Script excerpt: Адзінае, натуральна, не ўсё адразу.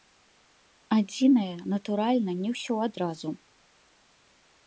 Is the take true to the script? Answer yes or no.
yes